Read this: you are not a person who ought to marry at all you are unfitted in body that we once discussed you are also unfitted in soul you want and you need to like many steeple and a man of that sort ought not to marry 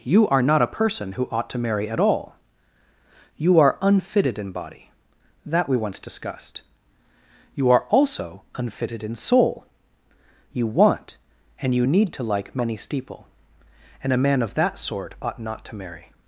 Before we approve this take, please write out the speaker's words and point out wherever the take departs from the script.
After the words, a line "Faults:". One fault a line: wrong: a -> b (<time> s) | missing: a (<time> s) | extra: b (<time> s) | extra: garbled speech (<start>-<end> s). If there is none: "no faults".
you are not a person who ought to marry at all you are unfitted in body that we once discussed you are also unfitted in soul you want and you need to like many steeple and a man of that sort ought not to marry
Faults:
no faults